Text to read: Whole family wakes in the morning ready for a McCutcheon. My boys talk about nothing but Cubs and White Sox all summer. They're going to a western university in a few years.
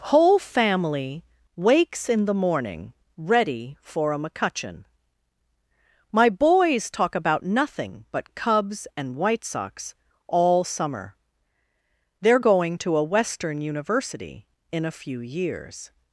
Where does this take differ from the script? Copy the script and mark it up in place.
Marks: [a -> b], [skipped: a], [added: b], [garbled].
Whole family wakes in the morning ready for a McCutcheon. My boys talk about nothing but Cubs and White Sox all summer. They're going to a western university in a few years.